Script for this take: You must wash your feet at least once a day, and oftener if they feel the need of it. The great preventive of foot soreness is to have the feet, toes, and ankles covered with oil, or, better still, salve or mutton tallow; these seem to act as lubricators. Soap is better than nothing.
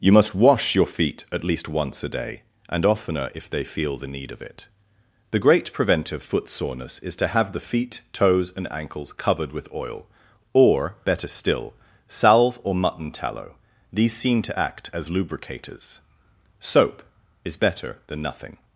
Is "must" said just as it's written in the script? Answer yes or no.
yes